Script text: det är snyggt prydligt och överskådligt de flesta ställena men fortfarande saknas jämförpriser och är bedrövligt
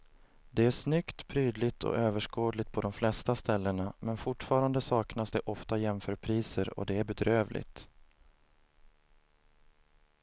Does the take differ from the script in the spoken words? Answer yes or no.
yes